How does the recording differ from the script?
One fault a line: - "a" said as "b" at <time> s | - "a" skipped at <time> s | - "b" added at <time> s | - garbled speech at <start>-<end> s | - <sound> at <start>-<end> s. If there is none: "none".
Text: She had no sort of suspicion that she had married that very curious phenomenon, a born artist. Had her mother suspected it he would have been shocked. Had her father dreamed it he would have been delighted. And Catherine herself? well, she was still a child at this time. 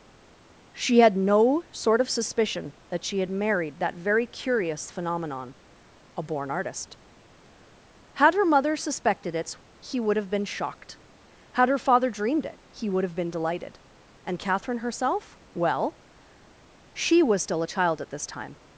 none